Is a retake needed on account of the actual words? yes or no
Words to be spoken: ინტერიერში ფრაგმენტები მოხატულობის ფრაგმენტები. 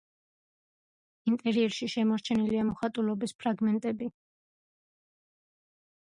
yes